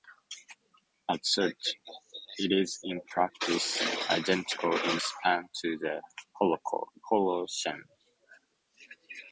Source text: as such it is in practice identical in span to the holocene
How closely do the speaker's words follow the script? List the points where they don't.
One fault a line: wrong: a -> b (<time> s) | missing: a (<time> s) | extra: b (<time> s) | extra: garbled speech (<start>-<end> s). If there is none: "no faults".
no faults